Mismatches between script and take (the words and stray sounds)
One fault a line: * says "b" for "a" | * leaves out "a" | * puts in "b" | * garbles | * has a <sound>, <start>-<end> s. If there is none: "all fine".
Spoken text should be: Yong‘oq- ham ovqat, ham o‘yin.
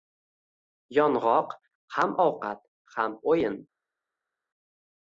all fine